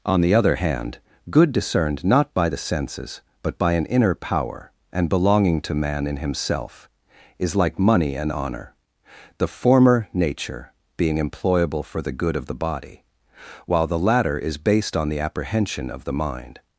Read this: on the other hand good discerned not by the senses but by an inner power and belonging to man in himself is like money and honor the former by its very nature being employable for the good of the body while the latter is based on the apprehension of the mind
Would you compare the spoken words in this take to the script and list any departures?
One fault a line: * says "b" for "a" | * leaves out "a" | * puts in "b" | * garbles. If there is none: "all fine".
* leaves out "by its very"